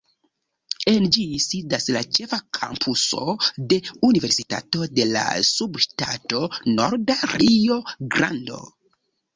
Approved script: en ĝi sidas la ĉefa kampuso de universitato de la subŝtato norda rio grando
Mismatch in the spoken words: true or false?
false